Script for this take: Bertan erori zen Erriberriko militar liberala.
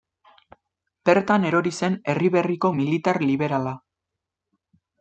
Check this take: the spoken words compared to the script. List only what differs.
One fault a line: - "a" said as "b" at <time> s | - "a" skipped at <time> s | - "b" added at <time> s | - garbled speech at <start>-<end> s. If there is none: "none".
none